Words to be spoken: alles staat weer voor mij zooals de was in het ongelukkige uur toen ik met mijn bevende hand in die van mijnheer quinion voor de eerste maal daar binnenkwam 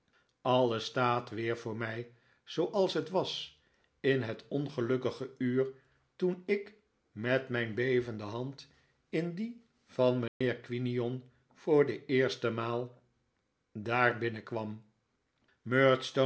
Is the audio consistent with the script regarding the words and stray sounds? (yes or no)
no